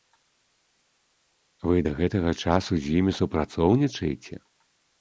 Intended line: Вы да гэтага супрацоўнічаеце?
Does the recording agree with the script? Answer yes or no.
no